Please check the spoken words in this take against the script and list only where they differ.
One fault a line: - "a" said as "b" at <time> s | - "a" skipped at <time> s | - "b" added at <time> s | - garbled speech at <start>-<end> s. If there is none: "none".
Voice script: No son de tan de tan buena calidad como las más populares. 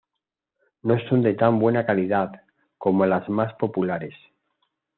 - "de tan" skipped at 1.6 s